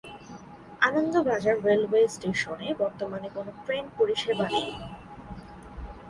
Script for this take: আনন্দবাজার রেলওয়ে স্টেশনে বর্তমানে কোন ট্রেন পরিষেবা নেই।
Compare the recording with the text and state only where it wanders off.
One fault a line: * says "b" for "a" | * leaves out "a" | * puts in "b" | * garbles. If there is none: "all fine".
all fine